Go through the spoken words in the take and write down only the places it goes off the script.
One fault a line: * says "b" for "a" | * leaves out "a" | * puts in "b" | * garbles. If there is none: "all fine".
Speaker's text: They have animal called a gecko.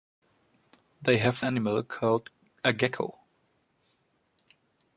all fine